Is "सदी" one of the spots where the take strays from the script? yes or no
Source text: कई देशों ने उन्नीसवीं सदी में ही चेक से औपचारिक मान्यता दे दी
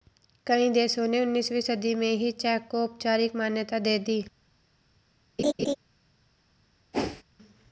no